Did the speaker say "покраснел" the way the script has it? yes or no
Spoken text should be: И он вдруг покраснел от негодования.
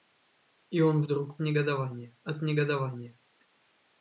no